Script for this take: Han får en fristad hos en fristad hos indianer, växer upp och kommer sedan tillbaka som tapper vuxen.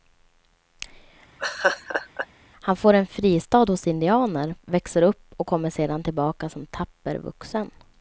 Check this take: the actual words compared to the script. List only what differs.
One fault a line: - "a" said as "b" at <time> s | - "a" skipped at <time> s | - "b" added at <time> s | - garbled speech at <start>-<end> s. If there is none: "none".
- "en fristad hos" skipped at 3.9 s